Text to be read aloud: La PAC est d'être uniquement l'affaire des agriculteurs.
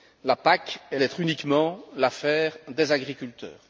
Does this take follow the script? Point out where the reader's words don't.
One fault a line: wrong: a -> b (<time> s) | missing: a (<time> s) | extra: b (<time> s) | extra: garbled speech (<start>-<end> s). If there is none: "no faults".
no faults